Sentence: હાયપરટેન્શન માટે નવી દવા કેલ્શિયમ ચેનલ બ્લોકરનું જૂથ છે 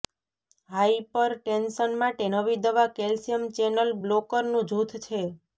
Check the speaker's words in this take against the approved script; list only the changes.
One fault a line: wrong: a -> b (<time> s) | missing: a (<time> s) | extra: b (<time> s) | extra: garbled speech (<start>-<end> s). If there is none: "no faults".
no faults